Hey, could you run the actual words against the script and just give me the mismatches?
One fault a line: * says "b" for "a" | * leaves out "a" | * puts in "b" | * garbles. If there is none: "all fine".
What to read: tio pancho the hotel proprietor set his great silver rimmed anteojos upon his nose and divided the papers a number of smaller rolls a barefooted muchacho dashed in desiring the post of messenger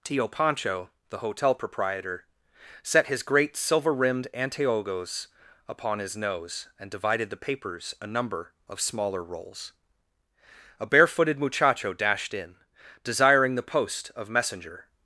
all fine